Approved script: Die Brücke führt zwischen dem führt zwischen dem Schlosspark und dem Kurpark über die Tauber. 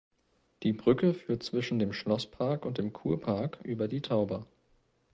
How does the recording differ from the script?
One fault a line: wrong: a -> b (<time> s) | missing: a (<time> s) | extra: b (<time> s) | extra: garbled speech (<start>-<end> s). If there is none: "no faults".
missing: führt zwischen dem (1.9 s)